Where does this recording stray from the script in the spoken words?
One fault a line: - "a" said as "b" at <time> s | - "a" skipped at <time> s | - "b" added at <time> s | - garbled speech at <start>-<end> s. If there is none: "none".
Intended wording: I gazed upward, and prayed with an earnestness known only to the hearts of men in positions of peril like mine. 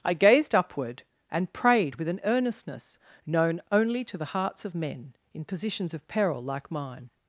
none